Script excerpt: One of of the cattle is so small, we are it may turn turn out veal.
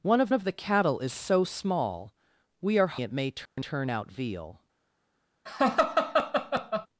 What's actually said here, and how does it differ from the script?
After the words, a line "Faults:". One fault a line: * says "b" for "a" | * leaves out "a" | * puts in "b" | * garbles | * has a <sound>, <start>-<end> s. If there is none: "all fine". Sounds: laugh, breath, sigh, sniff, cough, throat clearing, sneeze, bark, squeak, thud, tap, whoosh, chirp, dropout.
One of of the cattle is so small, we are it may turn turn out veal.
Faults:
* has a dropout, 3.5-3.6 s
* has a laugh, 5.5-6.9 s